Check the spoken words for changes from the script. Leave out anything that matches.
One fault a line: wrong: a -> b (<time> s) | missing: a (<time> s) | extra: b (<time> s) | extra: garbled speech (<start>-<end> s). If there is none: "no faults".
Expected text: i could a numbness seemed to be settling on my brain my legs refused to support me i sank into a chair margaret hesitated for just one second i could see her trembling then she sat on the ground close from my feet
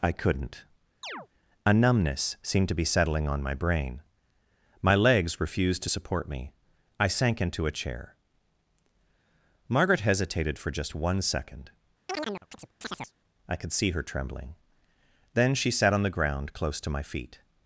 wrong: could -> couldn't (0.1 s)
wrong: from -> to (16.8 s)